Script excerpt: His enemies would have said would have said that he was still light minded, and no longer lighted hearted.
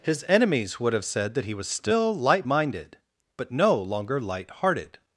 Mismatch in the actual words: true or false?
true